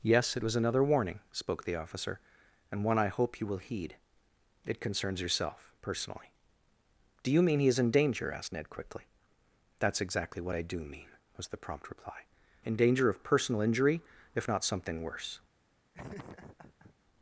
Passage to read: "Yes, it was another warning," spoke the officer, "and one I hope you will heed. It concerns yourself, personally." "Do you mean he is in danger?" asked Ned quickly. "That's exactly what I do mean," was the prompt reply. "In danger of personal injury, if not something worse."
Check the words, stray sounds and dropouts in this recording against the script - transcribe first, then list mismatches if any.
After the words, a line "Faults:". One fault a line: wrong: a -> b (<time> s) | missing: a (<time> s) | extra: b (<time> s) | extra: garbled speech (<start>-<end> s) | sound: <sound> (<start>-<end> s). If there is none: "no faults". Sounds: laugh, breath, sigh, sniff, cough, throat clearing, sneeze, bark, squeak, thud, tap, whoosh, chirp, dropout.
"Yes, it was another warning," spoke the officer, "and one I hope you will heed. It concerns yourself, personally." "Do you mean he is in danger?" asked Ned quickly. "That's exactly what I do mean," was the prompt reply. "In danger of personal injury, if not something worse."
Faults:
sound: laugh (15.9-16.9 s)